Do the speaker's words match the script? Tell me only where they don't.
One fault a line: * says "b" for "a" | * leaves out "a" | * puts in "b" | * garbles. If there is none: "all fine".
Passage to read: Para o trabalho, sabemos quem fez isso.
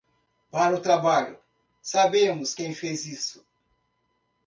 all fine